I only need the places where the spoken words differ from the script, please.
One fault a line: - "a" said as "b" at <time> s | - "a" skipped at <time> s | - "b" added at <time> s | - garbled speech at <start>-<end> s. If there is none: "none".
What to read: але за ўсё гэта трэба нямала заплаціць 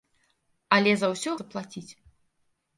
- "гэта трэба нямала" skipped at 1.3 s